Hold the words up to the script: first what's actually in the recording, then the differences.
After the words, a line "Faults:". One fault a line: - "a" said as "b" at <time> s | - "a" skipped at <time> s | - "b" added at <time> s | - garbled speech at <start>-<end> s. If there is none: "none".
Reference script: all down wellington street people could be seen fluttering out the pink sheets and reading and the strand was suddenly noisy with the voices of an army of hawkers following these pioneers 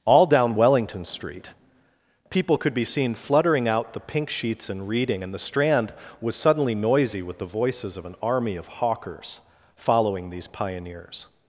all down wellington street people could be seen fluttering out the pink sheets and reading and the strand was suddenly noisy with the voices of an army of hawkers following these pioneers
Faults:
none